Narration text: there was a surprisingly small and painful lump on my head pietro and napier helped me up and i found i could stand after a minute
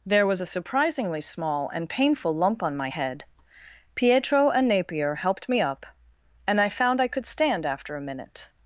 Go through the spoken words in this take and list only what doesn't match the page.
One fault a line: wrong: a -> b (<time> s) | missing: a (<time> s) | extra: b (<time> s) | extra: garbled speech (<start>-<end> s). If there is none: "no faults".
no faults